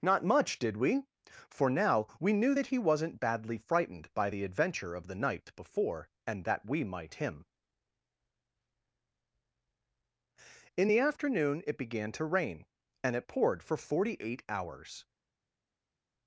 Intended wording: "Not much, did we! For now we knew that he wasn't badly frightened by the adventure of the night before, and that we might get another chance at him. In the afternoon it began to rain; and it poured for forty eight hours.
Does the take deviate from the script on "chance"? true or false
true